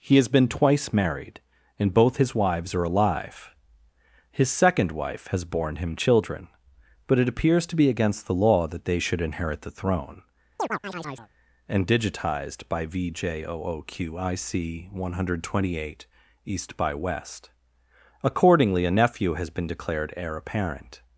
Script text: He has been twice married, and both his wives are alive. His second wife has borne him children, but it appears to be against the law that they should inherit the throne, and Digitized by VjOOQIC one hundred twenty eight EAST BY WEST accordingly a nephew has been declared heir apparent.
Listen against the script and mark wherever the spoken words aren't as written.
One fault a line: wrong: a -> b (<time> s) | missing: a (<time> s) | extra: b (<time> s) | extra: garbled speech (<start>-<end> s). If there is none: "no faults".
no faults